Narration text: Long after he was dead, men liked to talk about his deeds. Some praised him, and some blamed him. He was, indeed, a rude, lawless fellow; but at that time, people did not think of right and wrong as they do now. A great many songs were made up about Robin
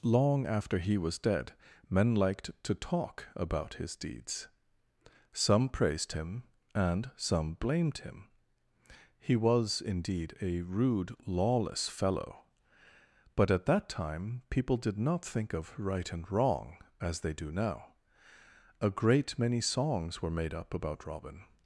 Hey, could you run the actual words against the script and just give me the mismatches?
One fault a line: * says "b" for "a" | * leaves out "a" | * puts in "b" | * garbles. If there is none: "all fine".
all fine